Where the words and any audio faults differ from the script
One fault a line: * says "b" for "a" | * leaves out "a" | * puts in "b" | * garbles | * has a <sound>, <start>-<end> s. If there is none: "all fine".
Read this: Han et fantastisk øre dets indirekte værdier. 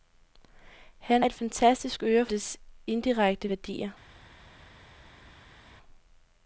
all fine